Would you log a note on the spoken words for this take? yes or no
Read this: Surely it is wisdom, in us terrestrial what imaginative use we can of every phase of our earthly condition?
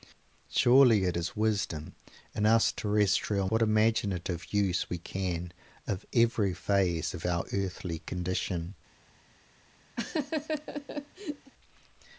no